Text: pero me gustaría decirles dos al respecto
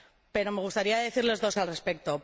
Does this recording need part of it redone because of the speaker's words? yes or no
no